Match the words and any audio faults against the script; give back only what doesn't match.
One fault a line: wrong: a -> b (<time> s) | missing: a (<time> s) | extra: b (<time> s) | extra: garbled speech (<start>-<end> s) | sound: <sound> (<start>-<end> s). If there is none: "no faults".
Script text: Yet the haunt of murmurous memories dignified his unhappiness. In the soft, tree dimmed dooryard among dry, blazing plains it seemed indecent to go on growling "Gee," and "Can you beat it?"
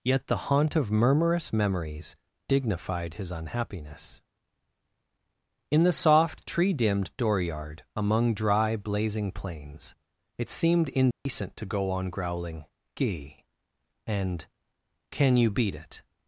sound: dropout (11.1-11.3 s)